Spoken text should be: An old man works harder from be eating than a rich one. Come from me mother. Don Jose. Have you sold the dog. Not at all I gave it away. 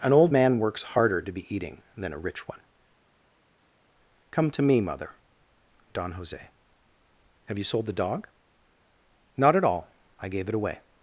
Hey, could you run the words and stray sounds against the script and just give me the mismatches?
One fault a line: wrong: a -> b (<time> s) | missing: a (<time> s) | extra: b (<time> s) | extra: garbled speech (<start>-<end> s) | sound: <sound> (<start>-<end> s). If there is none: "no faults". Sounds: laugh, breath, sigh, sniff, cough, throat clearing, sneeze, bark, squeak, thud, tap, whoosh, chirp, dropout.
wrong: from -> to (1.2 s)
wrong: from -> to (4.5 s)